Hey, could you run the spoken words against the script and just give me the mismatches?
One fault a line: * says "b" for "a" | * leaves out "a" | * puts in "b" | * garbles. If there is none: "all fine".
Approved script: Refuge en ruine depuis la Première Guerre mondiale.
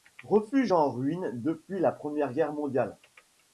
all fine